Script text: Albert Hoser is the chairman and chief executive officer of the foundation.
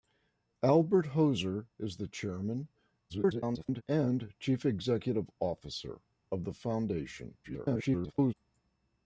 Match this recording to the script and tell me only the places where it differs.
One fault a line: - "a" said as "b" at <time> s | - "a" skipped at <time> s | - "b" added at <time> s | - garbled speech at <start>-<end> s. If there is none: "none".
- garbled speech at 3.1-3.8 s
- garbled speech at 7.4-8.3 s